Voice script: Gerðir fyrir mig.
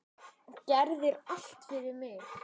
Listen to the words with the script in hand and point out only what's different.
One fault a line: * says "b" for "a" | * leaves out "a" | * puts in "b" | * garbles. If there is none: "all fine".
* puts in "allt"